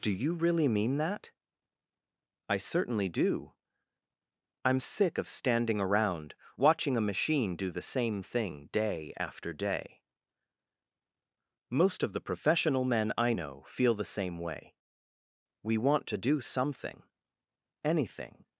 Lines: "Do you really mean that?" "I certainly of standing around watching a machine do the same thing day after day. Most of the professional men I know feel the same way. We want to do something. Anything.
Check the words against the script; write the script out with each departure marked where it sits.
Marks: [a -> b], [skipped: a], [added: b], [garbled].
"Do you really mean that?" "I certainly [added: do I'm sick] of standing around watching a machine do the same thing day after day. Most of the professional men I know feel the same way. We want to do something. Anything.